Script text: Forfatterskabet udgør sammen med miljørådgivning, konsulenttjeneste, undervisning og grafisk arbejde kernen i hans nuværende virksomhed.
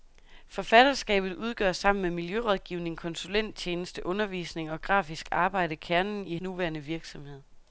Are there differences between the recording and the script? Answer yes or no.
yes